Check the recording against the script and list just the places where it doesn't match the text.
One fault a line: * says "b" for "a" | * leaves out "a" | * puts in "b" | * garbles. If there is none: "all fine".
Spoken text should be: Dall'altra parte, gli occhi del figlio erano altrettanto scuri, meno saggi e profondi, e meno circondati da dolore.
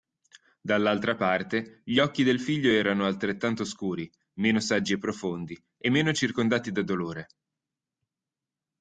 all fine